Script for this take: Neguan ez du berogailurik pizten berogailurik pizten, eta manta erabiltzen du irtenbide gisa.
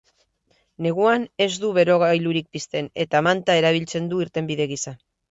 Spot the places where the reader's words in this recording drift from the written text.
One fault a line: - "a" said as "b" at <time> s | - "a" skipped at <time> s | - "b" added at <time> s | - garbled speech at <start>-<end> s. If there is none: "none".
- "berogailurik pizten" skipped at 2.9 s